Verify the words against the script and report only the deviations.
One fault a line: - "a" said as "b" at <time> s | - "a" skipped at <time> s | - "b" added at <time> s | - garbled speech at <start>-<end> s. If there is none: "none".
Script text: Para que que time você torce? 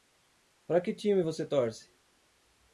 - "que" skipped at 0.9 s